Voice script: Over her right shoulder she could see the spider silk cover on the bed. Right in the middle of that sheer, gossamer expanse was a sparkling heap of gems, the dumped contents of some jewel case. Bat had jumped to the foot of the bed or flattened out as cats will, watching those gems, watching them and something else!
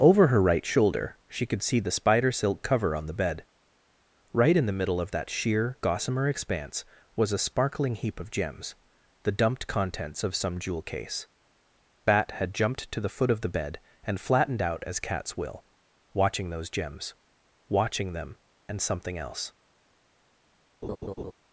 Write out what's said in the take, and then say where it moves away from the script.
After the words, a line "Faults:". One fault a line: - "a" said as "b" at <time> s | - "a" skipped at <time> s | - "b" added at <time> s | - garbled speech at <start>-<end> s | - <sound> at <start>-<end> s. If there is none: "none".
Over her right shoulder she could see the spider silk cover on the bed. Right in the middle of that sheer, gossamer expanse was a sparkling heap of gems, the dumped contents of some jewel case. Bat had jumped to the foot of the bed and flattened out as cats will, watching those gems, watching them and something else!
Faults:
- "or" said as "and" at 14.0 s
- laugh at 20.8-21.3 s